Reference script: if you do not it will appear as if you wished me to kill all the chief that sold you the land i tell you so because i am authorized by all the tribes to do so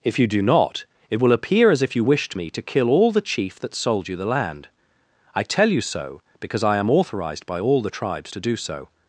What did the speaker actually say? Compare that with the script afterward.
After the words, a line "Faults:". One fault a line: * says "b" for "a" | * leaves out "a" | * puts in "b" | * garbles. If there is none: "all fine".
if you do not it will appear as if you wished me to kill all the chief that sold you the land i tell you so because i am authorized by all the tribes to do so
Faults:
all fine